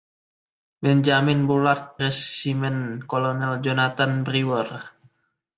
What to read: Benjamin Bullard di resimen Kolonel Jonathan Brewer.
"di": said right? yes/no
no